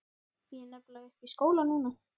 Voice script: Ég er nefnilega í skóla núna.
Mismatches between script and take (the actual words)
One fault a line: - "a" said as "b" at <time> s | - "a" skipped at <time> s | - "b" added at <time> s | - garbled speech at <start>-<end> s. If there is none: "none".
- "uppi" added at 1.1 s